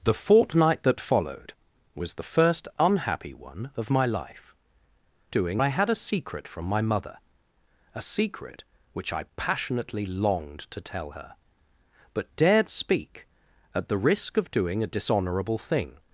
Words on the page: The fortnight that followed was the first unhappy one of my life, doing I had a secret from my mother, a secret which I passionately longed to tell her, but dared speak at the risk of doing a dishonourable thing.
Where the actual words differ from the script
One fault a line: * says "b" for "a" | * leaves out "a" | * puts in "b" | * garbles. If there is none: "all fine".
all fine